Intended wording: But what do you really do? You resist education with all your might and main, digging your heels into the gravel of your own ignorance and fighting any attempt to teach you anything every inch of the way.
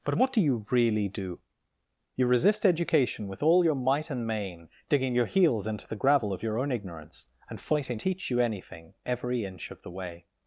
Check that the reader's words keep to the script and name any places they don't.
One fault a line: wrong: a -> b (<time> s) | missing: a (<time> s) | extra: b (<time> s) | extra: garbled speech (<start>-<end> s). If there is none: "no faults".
missing: any attempt to (8.0 s)